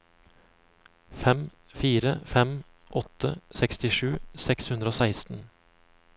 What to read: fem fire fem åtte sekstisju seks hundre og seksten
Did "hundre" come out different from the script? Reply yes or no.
no